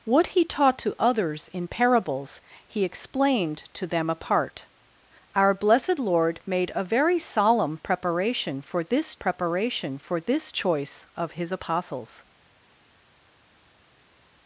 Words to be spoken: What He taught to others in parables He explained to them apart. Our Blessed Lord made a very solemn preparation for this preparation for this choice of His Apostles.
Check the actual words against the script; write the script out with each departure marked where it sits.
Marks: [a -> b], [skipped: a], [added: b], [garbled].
What He taught to others in parables He explained to them apart. Our Blessed Lord made a very solemn preparation for this preparation for this choice of His Apostles.